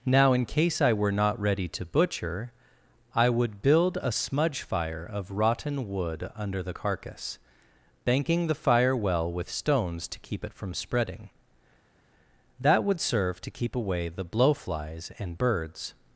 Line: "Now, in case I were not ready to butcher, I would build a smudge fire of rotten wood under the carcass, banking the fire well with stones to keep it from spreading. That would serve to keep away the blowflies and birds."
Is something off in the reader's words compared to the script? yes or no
no